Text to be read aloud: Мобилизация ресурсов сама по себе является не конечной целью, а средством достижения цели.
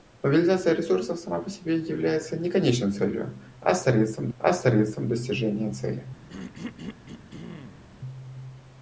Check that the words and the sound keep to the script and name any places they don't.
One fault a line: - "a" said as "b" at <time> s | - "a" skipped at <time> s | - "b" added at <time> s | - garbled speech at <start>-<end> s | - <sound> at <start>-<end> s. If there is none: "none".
- "а средством" added at 4.4 s
- throat clearing at 6.3-7.8 s